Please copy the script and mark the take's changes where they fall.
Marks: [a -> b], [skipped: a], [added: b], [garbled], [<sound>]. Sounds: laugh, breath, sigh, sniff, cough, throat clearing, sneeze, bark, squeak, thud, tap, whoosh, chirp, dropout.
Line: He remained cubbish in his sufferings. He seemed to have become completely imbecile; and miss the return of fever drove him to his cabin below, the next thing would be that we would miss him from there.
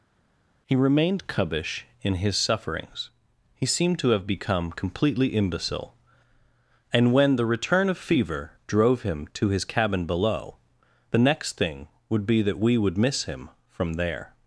He remained cubbish in his sufferings. He seemed to have become completely imbecile; and [miss -> when] the return of fever drove him to his cabin below, the next thing would be that we would miss him from there.